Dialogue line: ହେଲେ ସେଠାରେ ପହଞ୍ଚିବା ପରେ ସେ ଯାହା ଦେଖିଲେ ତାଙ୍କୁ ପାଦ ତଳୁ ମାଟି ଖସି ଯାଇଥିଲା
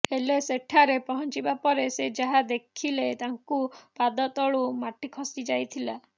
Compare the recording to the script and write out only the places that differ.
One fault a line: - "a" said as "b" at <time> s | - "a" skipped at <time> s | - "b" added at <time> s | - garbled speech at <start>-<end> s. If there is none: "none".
none